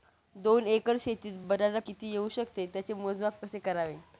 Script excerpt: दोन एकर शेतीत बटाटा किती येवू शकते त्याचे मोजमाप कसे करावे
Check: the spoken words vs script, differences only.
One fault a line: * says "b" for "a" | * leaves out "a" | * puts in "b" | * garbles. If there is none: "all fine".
all fine